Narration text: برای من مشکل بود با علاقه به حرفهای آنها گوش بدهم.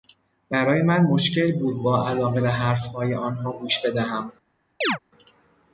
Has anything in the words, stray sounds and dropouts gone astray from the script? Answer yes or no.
yes